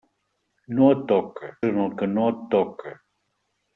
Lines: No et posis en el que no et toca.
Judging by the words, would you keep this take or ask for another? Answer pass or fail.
fail